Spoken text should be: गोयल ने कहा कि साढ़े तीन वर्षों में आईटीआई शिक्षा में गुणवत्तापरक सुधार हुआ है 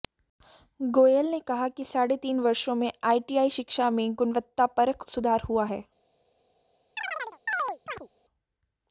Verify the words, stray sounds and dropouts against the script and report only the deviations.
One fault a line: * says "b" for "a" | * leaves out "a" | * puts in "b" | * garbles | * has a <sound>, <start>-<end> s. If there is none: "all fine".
* has a chirp, 7.0-8.1 s